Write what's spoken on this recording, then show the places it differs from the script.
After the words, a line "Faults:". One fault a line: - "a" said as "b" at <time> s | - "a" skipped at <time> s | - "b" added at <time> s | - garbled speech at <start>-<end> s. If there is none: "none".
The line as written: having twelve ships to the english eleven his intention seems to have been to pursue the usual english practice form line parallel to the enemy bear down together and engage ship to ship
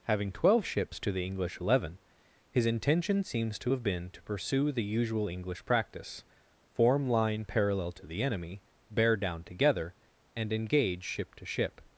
having twelve ships to the english eleven his intention seems to have been to pursue the usual english practice form line parallel to the enemy bear down together and engage ship to ship
Faults:
none